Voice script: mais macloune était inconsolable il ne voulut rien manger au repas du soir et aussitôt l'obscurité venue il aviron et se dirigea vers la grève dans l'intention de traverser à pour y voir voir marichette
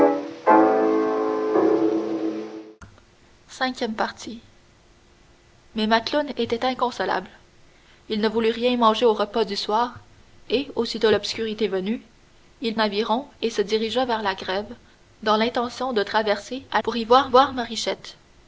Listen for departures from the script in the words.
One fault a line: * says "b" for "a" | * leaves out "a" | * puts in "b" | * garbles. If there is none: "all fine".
all fine